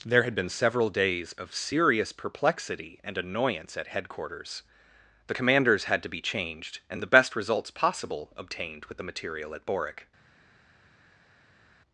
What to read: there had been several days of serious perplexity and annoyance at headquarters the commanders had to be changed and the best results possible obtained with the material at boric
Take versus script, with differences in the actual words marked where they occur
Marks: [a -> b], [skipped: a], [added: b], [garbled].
there had been several days of serious perplexity and annoyance at headquarters the commanders had to be changed and the best results possible obtained with the material at boric